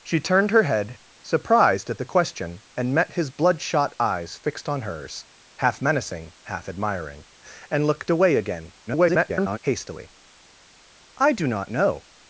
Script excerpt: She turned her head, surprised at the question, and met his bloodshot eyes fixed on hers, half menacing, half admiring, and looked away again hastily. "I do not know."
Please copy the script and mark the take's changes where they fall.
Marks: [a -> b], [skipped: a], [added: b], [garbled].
She turned her head, surprised at the question, and met his bloodshot eyes fixed on hers, half menacing, half admiring, and looked away again [garbled] hastily. "I do not know."